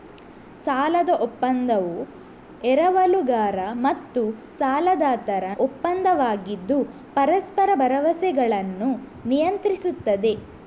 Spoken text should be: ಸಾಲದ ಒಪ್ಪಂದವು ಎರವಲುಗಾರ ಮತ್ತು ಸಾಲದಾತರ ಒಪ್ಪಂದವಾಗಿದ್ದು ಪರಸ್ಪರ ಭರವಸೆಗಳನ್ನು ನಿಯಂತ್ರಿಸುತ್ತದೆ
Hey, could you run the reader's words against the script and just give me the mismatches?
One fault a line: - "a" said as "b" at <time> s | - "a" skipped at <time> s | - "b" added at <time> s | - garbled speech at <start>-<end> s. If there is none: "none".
none